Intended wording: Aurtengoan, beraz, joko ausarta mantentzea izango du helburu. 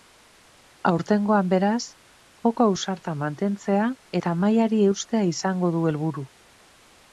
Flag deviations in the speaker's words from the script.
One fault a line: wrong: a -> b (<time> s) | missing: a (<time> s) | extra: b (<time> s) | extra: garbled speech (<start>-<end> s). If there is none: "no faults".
extra: eta mailari eustea (4.2 s)